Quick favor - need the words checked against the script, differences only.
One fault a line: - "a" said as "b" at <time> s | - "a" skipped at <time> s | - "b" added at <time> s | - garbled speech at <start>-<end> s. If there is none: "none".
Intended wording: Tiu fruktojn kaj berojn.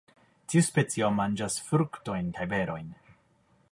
- "specio manĝas" added at 0.7 s